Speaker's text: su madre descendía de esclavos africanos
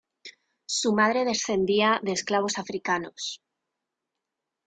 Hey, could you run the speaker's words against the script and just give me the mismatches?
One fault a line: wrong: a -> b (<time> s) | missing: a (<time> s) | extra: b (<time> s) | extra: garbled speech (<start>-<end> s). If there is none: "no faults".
no faults